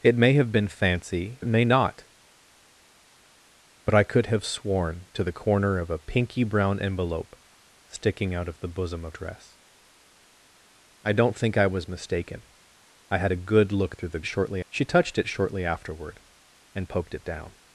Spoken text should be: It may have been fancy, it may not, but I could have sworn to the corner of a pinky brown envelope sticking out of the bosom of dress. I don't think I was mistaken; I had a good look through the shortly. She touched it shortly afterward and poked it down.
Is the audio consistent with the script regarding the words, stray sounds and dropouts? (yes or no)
yes